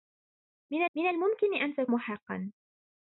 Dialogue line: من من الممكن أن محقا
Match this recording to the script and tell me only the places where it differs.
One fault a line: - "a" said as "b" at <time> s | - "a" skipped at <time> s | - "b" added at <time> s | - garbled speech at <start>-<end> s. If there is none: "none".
none